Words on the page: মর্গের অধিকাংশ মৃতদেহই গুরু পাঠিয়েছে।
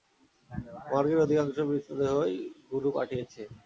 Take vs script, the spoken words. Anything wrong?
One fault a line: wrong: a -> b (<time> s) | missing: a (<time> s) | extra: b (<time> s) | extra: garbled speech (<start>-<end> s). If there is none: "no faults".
no faults